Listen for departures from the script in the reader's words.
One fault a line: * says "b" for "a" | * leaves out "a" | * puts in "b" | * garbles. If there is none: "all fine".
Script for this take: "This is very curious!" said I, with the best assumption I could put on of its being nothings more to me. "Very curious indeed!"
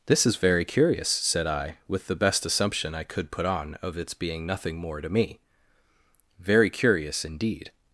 * says "nothing" for "nothings"